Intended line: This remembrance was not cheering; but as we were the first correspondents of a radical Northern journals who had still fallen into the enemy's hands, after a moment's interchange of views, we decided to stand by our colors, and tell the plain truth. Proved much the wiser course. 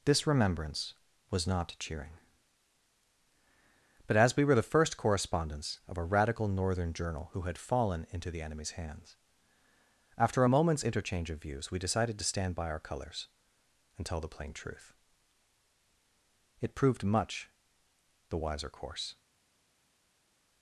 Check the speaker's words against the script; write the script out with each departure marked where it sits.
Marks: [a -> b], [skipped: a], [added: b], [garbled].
This remembrance was not cheering; but as we were the first correspondents of a radical Northern [journals -> journal] who had [skipped: still] fallen into the enemy's hands, after a moment's interchange of views, we decided to stand by our colors, and tell the plain truth. [added: It] Proved much the wiser course.